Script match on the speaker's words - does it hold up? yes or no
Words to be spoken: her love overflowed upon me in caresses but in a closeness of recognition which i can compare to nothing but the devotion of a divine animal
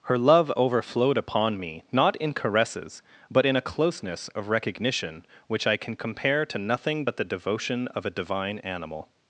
no